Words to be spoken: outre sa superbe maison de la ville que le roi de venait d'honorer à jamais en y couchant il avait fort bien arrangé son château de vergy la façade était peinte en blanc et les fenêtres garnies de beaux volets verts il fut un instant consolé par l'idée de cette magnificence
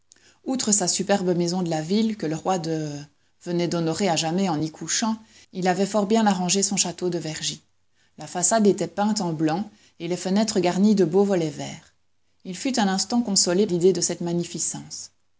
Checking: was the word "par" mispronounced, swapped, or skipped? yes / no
yes